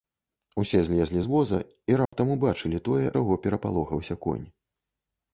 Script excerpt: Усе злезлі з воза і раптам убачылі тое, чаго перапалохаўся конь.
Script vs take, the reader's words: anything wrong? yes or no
no